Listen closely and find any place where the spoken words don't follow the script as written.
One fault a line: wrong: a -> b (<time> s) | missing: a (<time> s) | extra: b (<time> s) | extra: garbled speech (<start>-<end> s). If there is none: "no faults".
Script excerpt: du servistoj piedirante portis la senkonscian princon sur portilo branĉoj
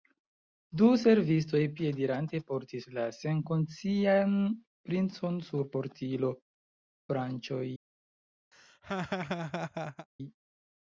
no faults